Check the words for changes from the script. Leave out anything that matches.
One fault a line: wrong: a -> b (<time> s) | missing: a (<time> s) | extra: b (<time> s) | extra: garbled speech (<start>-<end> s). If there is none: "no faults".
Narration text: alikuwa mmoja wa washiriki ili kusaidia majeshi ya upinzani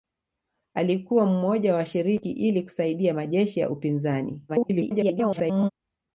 extra: garbled speech (4.5-5.7 s)